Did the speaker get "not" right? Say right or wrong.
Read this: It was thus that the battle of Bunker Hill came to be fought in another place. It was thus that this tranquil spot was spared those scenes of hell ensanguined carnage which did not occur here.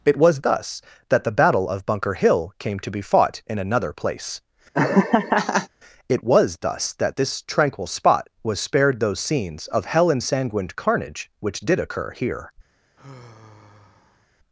wrong